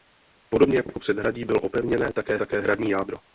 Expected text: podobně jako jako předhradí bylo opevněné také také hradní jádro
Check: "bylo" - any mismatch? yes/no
no